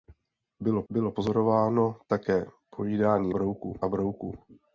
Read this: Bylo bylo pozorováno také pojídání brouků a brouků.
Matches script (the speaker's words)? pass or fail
pass